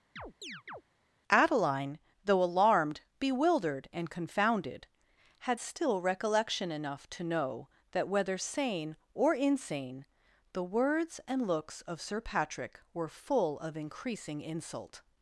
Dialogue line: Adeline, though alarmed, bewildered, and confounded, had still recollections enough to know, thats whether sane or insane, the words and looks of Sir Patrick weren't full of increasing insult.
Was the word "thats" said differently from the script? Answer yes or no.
yes